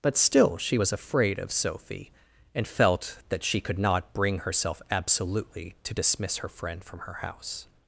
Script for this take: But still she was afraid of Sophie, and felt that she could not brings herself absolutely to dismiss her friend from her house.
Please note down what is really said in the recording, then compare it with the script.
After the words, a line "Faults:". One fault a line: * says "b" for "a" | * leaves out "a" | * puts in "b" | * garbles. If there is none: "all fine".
But still she was afraid of Sophie, and felt that she could not bring herself absolutely to dismiss her friend from her house.
Faults:
* says "bring" for "brings"